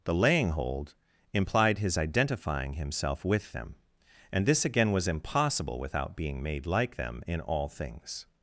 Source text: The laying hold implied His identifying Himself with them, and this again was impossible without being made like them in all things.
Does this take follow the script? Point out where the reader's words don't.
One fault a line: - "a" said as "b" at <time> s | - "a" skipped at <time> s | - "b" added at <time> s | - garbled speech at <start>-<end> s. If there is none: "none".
none